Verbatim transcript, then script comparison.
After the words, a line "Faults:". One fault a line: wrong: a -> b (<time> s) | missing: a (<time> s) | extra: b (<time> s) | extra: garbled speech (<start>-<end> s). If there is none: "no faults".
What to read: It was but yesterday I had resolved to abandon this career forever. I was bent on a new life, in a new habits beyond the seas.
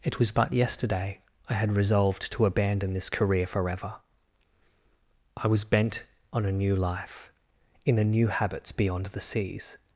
It was but yesterday I had resolved to abandon this career forever. I was bent on a new life, in a new habits beyond the seas.
Faults:
no faults